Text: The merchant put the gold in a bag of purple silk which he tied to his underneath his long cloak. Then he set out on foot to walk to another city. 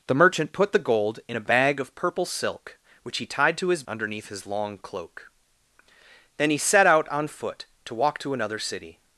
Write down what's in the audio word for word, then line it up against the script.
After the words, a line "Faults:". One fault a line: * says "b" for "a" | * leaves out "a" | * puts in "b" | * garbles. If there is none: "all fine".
The merchant put the gold in a bag of purple silk which he tied to his underneath his long cloak. Then he set out on foot to walk to another city.
Faults:
all fine